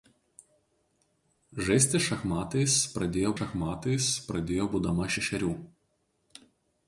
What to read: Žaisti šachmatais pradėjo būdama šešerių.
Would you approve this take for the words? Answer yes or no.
no